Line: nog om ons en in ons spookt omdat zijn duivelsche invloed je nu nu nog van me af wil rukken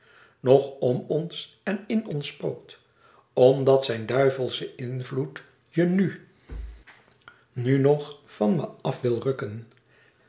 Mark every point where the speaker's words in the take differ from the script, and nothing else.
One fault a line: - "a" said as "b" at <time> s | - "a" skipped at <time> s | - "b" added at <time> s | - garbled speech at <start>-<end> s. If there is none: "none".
none